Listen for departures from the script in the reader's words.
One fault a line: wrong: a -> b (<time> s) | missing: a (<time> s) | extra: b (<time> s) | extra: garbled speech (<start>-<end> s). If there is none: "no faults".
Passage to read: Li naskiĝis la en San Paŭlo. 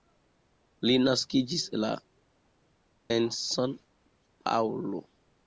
no faults